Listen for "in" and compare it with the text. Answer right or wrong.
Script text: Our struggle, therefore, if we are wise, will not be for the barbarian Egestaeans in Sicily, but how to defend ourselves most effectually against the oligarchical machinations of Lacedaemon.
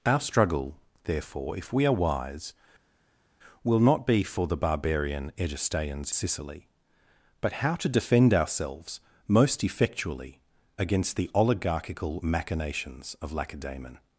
wrong